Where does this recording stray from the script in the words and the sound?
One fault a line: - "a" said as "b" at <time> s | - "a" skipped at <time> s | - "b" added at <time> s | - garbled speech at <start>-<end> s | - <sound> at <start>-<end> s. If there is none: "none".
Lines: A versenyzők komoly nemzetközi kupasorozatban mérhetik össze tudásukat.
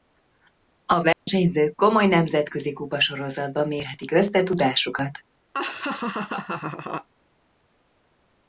- dropout at 1.1-1.3 s
- laugh at 5.5-7.1 s